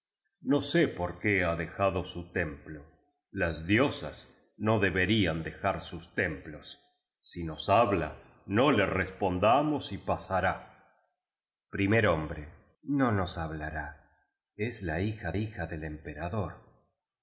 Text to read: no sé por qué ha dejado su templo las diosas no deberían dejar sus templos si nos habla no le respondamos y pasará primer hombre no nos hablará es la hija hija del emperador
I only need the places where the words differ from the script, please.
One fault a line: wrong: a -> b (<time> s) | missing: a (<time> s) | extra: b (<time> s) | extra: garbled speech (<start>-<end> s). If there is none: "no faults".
no faults